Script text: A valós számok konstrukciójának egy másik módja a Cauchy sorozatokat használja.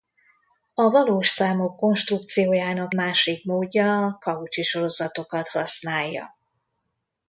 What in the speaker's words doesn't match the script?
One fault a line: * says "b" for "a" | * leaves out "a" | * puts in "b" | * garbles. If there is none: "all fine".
* leaves out "egy"